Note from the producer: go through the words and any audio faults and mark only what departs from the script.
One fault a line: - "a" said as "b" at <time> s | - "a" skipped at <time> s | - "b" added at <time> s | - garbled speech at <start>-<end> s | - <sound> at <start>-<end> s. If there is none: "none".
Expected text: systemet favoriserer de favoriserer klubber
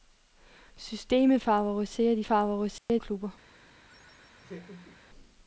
- dropout at 2.8-2.9 s
- laugh at 3.9-5.0 s